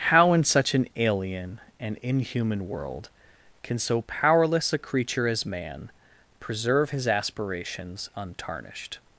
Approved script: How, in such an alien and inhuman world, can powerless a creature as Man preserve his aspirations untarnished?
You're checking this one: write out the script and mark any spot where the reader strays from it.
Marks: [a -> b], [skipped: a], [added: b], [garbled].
How, in such an alien and inhuman world, can [added: so] powerless a creature as Man preserve his aspirations untarnished?